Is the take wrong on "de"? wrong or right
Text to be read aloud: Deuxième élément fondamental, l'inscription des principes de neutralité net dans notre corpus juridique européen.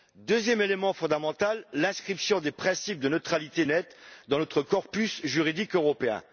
right